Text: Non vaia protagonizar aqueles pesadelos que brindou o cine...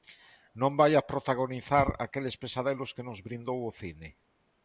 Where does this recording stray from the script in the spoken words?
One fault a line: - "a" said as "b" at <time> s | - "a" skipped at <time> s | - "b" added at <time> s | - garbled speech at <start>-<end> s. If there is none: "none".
- "nos" added at 3.1 s